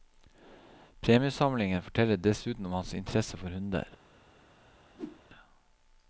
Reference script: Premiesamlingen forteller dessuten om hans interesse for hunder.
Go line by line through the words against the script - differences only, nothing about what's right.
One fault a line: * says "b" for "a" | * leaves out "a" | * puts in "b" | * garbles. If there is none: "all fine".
all fine